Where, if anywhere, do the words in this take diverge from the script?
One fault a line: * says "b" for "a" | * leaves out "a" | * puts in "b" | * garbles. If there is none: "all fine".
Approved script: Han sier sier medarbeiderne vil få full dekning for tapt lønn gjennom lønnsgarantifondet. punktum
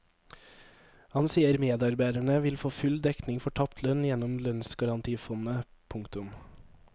* leaves out "sier"